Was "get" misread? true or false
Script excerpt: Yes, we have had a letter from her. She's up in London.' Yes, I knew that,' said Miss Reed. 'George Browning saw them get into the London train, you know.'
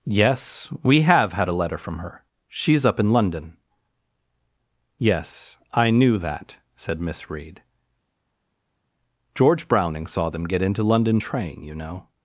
false